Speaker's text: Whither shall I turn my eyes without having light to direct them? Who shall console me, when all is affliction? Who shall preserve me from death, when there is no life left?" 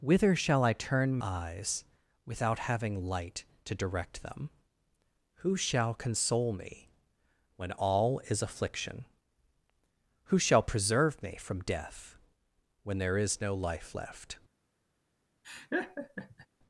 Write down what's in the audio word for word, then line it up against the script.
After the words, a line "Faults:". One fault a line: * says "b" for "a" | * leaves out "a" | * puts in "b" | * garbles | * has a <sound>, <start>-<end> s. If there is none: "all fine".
Whither shall I turn eyes without having light to direct them? Who shall console me, when all is affliction? Who shall preserve me from death, when there is no life left?"
Faults:
* leaves out "my"
* has a laugh, 15.4-16.5 s